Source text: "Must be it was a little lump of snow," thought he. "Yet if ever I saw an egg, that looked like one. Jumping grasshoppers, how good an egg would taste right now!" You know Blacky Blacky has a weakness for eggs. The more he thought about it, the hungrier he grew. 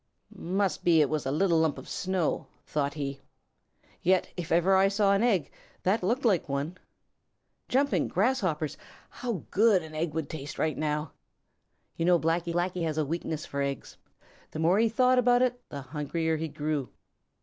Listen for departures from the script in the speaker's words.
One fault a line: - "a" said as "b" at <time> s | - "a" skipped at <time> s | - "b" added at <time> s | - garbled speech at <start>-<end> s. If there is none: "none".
none